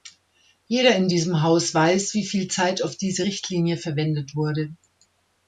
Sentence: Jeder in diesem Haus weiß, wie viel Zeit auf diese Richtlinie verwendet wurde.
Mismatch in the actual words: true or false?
false